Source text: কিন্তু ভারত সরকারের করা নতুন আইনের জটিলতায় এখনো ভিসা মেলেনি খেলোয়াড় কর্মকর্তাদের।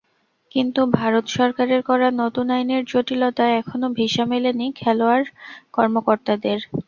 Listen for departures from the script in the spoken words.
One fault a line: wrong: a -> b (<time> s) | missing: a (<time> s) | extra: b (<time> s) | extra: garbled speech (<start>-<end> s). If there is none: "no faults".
no faults